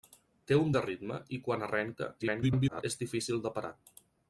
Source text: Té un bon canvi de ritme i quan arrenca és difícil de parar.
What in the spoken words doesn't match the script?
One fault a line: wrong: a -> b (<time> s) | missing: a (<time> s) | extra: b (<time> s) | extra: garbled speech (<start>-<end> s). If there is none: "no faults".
missing: bon canvi (0.7 s)
extra: garbled speech (2.2-2.8 s)